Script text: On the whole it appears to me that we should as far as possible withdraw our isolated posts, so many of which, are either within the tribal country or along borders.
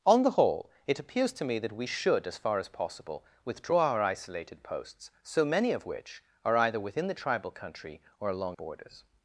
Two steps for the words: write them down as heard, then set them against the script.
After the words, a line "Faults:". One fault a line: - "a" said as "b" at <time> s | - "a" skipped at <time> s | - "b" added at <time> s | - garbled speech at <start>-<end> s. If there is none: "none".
On the whole it appears to me that we should as far as possible withdraw our isolated posts, so many of which, are either within the tribal country or along borders.
Faults:
none